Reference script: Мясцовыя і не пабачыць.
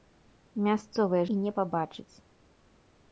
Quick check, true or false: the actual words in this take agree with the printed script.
true